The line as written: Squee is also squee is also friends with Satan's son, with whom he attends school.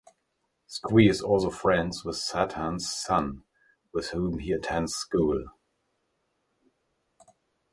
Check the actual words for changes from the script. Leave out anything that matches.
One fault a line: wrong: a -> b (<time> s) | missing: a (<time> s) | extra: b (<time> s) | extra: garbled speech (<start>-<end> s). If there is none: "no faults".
missing: squee is also (1.5 s)